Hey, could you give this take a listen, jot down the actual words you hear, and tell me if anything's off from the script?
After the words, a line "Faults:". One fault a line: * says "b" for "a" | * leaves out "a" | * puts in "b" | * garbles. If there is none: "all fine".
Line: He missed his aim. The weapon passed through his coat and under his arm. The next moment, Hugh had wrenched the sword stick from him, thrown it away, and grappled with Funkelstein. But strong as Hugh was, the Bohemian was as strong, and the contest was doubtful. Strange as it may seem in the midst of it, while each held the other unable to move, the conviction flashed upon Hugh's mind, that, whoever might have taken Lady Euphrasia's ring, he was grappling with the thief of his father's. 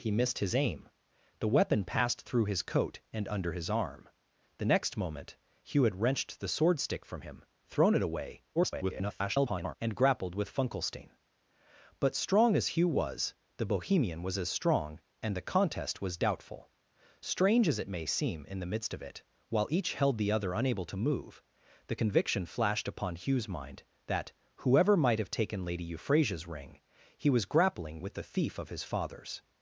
He missed his aim. The weapon passed through his coat and under his arm. The next moment, Hugh had wrenched the sword stick from him, thrown it away, [garbled] and grappled with Funkelstein. But strong as Hugh was, the Bohemian was as strong, and the contest was doubtful. Strange as it may seem in the midst of it, while each held the other unable to move, the conviction flashed upon Hugh's mind, that, whoever might have taken Lady Euphrasia's ring, he was grappling with the thief of his father's.
Faults:
* garbles